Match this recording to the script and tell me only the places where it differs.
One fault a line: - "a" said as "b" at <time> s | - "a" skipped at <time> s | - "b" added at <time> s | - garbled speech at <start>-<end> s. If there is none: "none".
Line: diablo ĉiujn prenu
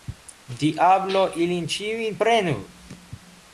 - "ilin" added at 1.4 s